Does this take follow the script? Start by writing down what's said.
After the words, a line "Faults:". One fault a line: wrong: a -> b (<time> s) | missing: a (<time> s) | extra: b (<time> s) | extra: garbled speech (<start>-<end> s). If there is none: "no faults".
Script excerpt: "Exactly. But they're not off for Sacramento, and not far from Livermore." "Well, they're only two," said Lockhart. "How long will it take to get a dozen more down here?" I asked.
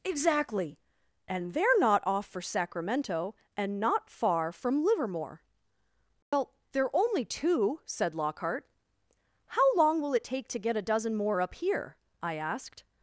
"Exactly. And they're not off for Sacramento, and not far from Livermore." "Well, they're only two," said Lockhart. "How long will it take to get a dozen more up here?" I asked.
Faults:
wrong: But -> And (1.3 s)
wrong: down -> up (11.4 s)